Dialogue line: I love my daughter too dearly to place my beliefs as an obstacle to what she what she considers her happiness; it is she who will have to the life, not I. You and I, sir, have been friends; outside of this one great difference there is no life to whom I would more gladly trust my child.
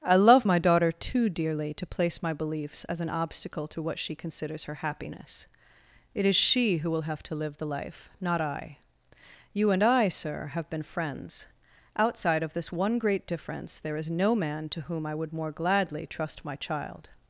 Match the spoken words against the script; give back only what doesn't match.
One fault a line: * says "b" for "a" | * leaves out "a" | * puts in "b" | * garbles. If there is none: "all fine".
* leaves out "what she"
* puts in "live"
* says "man" for "life"